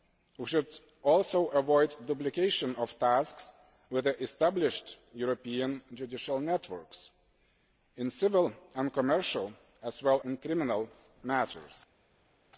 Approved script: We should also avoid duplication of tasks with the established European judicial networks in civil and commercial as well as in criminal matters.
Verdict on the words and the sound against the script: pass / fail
fail